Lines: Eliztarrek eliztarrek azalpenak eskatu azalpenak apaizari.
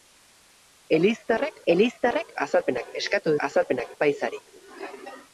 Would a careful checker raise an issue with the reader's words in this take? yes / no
no